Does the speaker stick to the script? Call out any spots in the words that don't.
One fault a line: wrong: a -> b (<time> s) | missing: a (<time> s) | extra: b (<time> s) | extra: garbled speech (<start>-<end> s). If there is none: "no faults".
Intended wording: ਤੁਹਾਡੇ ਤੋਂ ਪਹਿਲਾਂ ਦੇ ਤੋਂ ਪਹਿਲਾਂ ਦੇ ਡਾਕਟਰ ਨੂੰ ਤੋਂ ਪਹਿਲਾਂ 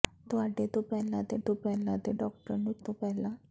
no faults